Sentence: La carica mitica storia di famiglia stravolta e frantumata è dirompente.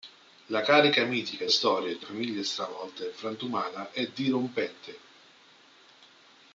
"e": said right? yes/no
yes